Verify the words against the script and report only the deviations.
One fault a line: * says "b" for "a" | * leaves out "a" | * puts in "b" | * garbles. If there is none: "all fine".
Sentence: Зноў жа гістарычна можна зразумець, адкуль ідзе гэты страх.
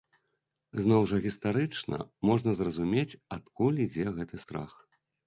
all fine